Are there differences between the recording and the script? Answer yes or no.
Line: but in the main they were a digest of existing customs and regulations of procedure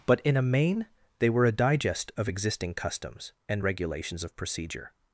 yes